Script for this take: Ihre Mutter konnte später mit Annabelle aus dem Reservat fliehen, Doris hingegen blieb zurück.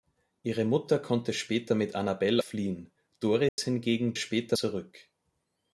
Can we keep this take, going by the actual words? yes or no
no